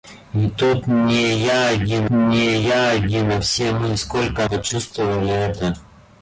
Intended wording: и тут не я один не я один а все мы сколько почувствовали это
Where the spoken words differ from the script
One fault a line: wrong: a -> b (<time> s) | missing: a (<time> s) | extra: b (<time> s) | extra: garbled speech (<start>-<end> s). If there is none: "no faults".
no faults